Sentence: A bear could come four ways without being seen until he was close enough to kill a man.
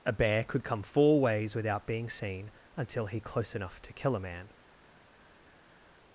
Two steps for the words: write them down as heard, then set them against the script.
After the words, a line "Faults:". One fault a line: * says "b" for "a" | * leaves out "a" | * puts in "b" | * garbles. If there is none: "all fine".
A bear could come four ways without being seen until he close enough to kill a man.
Faults:
* leaves out "was"